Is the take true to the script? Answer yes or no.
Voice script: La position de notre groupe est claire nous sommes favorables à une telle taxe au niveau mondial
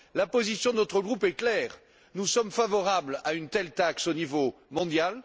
yes